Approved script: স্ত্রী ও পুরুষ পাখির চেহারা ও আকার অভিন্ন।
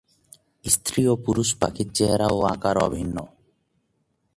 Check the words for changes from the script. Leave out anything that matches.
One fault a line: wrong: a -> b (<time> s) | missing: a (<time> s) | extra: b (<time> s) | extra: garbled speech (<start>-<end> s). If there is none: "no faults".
no faults